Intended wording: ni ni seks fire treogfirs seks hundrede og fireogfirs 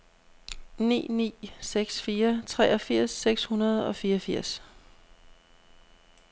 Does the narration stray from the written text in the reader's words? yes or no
no